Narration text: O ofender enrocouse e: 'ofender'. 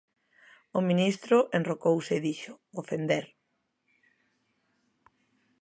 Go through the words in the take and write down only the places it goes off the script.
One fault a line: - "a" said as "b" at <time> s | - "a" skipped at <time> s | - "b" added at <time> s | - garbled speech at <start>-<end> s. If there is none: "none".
- "ofender" said as "ministro" at 0.9 s
- "dixo" added at 2.3 s